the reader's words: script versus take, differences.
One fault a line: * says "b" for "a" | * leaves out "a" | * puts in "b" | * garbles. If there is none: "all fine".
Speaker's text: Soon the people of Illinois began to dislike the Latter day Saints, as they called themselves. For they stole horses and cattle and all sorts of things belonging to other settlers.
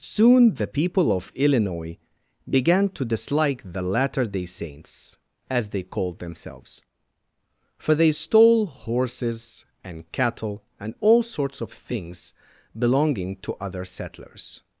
all fine